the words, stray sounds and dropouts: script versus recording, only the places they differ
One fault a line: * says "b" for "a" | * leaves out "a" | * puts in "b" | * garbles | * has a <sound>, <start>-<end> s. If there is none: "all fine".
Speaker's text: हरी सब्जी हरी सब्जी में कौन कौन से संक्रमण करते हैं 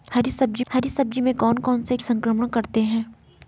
all fine